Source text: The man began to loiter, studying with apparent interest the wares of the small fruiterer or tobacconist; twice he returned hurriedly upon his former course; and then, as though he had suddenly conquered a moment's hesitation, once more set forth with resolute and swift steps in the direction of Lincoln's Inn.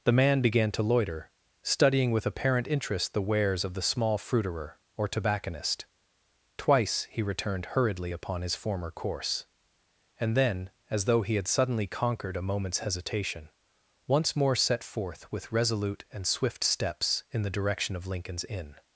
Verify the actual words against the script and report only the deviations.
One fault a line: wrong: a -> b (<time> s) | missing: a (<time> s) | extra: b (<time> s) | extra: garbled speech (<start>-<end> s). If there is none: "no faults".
no faults